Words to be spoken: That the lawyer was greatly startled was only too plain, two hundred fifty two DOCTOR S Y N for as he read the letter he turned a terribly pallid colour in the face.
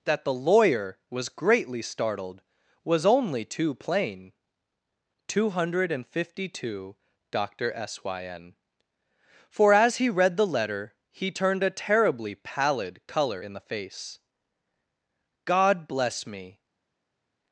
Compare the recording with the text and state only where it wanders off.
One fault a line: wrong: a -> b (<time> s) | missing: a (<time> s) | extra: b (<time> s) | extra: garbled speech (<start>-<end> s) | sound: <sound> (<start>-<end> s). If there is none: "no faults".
extra: God bless me (15.4 s)